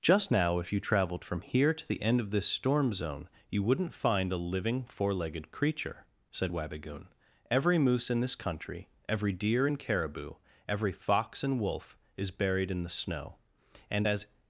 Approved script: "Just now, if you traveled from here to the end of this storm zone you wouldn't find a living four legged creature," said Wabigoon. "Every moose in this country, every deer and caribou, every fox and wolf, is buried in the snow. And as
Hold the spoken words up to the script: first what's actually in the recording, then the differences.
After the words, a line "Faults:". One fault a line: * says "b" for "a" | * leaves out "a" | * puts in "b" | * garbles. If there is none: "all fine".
"Just now, if you traveled from here to the end of this storm zone you wouldn't find a living four legged creature," said Wabigoon. "Every moose in this country, every deer and caribou, every fox and wolf, is buried in the snow. And as
Faults:
all fine